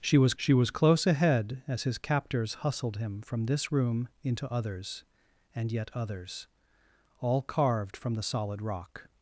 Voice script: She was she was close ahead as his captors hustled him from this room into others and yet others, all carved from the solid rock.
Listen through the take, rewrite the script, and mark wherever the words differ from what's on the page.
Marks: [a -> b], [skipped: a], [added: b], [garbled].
She was she was close ahead as his captors hustled him from this room into others and yet others, all carved from the solid rock.